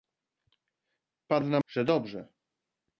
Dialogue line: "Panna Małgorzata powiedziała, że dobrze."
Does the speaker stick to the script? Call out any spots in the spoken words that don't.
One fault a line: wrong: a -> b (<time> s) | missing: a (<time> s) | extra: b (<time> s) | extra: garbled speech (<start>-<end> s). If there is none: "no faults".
missing: Małgorzata powiedziała (1.6 s)